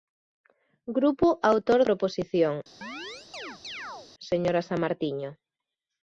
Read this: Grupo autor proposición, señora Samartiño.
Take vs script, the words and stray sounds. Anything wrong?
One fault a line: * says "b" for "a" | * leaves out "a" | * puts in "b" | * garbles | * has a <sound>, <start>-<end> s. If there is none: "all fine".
* has a chirp, 2.8-4.1 s